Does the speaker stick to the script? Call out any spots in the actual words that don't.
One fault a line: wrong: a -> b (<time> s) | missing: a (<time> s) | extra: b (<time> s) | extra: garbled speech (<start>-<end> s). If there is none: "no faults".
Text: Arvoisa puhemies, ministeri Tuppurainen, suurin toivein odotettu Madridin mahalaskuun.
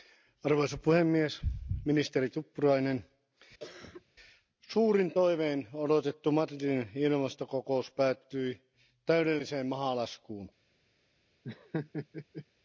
extra: ilmastokokous päättyi täydelliseen (7.0 s)